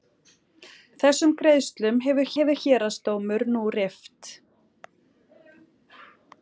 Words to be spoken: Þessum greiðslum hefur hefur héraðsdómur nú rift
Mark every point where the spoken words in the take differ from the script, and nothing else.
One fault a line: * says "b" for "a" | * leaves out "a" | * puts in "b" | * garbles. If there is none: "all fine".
all fine